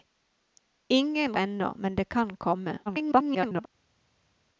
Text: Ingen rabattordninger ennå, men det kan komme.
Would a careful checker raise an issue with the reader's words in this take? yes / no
yes